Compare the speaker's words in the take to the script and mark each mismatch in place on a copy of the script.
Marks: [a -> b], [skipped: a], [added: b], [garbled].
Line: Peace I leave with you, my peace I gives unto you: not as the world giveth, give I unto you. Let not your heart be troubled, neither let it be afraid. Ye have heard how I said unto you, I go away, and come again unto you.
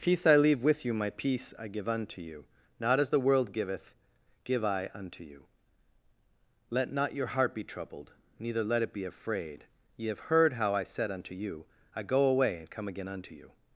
Peace I leave with you, my peace I [gives -> give] unto you: not as the world giveth, give I unto you. Let not your heart be troubled, neither let it be afraid. Ye have heard how I said unto you, I go away, and come again unto you.